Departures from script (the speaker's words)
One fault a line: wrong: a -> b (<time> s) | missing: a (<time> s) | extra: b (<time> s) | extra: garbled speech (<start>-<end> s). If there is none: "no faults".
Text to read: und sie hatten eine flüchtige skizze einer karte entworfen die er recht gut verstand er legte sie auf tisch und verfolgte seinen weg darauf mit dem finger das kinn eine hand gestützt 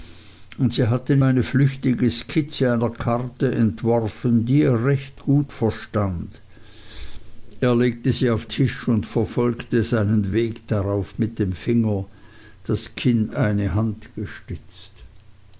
no faults